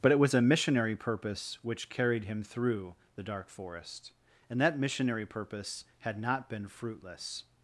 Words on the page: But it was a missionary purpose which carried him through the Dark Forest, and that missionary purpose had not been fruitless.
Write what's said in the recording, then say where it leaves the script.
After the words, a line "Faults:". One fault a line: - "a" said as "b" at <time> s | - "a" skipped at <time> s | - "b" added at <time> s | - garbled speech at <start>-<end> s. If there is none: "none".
But it was a missionary purpose which carried him through the Dark Forest, and that missionary purpose had not been fruitless.
Faults:
none